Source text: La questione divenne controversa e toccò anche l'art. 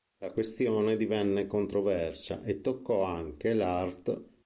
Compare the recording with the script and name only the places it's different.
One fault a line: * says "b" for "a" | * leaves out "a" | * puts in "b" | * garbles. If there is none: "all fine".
all fine